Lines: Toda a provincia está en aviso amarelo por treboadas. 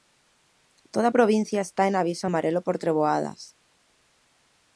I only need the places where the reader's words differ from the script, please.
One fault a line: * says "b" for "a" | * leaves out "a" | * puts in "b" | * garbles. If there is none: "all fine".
all fine